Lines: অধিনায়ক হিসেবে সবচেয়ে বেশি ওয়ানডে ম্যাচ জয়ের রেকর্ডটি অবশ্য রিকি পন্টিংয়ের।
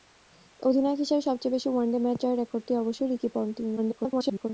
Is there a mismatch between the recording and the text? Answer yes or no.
yes